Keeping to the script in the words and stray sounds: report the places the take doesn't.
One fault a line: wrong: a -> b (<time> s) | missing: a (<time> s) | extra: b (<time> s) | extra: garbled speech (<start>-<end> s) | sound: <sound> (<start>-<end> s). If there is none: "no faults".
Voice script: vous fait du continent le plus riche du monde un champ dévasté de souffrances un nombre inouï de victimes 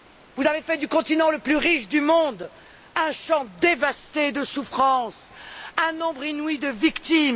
extra: avez (0.5 s)